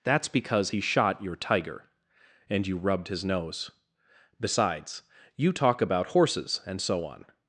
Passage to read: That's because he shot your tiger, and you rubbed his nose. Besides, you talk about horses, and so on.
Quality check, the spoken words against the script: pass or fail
pass